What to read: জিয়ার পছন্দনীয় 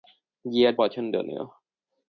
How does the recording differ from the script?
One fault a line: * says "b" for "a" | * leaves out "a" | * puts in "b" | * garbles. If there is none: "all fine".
all fine